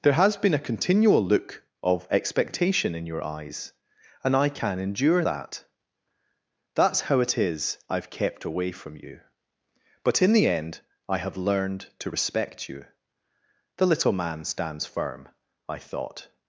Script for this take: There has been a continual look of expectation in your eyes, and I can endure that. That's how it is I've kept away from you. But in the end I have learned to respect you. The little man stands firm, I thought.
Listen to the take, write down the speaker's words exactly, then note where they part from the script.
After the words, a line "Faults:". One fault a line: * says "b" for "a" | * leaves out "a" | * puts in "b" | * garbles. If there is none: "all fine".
There has been a continual look of expectation in your eyes, and I can endure that. That's how it is I've kept away from you. But in the end I have learned to respect you. The little man stands firm, I thought.
Faults:
all fine